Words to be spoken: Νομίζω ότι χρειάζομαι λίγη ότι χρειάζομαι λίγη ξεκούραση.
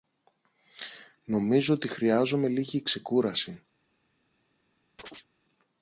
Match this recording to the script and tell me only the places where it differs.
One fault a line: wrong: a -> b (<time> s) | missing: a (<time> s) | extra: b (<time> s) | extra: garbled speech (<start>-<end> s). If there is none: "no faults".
missing: ότι χρειάζομαι λίγη (2.8 s)